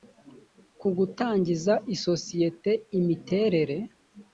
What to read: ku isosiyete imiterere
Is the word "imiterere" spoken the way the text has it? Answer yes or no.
yes